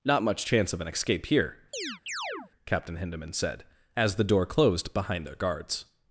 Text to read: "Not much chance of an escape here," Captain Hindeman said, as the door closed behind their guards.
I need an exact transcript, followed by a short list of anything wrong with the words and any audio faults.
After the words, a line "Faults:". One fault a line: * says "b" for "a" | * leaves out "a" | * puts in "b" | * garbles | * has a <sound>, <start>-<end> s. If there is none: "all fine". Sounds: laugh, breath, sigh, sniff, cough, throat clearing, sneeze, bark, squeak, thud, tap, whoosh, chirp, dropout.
"Not much chance of an escape here," Captain Hindeman said, as the door closed behind their guards.
Faults:
* has a chirp, 1.7-2.5 s